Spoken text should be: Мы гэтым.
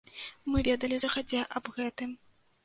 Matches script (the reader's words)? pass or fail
fail